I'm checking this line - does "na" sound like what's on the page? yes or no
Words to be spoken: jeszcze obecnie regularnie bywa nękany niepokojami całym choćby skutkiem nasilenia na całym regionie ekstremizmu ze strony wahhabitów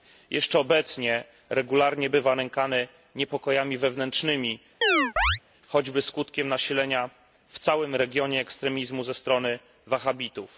no